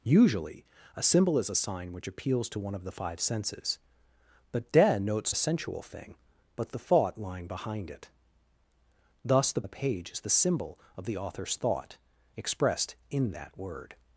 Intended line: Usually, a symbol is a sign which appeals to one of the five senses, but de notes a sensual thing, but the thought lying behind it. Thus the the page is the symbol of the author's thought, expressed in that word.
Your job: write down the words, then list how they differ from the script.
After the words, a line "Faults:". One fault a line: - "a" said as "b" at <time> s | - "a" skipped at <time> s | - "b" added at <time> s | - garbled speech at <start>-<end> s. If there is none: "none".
Usually, a symbol is a sign which appeals to one of the five senses, but de notes a sensual thing, but the thought lying behind it. Thus the the page is the symbol of the author's thought, expressed in that word.
Faults:
none